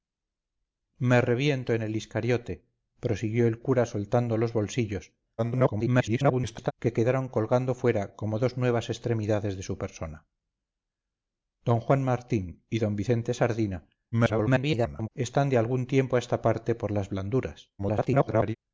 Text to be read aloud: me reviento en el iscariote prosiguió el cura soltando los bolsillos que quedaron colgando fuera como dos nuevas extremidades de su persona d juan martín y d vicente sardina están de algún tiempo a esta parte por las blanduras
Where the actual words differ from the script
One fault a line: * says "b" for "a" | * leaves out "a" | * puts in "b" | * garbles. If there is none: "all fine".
* garbles
* garbles
* garbles